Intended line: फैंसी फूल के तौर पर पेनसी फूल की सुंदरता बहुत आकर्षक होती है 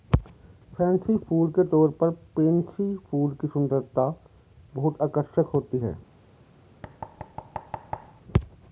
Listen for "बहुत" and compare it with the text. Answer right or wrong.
right